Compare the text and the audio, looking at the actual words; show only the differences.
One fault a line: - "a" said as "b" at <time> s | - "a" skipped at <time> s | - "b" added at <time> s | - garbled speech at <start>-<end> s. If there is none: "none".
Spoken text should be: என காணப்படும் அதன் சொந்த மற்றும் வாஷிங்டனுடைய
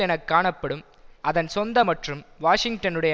none